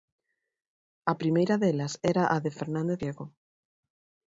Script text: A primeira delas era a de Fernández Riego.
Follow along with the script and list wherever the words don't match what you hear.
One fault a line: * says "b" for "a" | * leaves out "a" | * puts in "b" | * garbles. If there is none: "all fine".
all fine